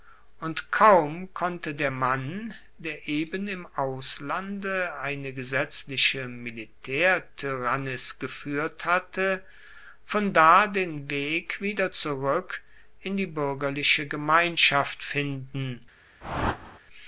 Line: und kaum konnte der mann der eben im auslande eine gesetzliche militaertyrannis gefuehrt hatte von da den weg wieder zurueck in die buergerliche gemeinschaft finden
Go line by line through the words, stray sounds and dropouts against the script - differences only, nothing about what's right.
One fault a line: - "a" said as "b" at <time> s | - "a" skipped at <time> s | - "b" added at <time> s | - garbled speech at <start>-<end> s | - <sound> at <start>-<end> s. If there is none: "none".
- whoosh at 16.2-16.8 s